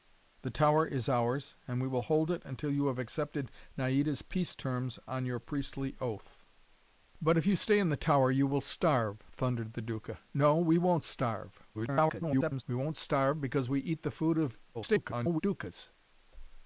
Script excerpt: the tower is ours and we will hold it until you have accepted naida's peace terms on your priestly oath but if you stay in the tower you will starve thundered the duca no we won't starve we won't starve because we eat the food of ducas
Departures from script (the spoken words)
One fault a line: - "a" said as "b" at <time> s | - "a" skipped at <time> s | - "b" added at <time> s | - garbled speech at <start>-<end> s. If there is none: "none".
- garbled speech at 11.7-12.6 s
- garbled speech at 14.7-15.4 s